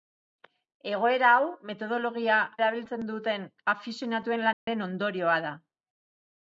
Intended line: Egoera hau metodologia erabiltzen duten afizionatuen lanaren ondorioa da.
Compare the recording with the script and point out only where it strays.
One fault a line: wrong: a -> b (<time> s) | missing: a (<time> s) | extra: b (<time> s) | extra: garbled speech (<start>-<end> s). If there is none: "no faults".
no faults